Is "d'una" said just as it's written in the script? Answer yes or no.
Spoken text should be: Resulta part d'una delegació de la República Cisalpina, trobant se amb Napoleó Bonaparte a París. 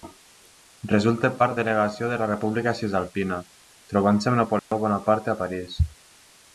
no